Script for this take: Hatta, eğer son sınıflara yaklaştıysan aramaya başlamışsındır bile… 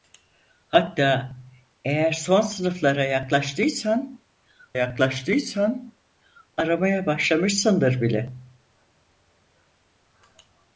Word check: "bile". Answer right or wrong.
right